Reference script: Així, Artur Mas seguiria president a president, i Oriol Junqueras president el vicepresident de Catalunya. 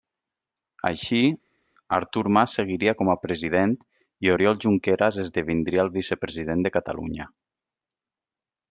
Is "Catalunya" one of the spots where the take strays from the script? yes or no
no